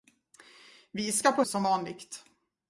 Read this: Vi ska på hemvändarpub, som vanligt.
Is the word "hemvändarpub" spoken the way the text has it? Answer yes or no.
no